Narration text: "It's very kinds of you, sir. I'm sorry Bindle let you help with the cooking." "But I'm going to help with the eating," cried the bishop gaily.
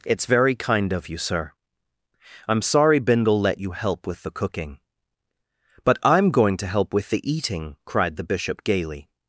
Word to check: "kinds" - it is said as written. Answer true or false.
false